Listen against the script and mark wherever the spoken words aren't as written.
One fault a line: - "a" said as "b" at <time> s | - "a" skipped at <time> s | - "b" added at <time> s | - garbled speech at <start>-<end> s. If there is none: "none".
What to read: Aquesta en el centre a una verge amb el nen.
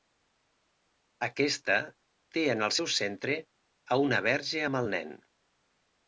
- "té" added at 2.4 s
- "seu" added at 2.8 s